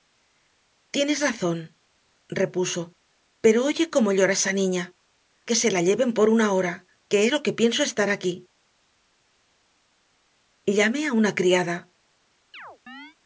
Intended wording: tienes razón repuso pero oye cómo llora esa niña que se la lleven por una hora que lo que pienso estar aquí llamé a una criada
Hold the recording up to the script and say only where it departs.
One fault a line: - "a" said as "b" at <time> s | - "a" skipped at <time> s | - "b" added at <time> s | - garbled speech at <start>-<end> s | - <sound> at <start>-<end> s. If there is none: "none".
- chirp at 12.5-13.2 s